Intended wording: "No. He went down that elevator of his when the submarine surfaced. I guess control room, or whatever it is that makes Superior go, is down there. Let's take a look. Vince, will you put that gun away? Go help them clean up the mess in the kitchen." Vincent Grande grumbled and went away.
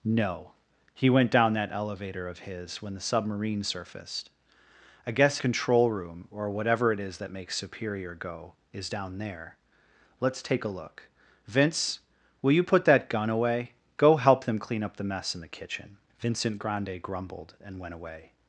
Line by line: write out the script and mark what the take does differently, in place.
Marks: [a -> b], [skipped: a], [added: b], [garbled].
"No. He went down that elevator of his when the submarine surfaced. I guess control room, or whatever it is that makes Superior go, is down there. Let's take a look. Vince, will you put that gun away? Go help them clean up the mess in the kitchen." Vincent Grande grumbled and went away.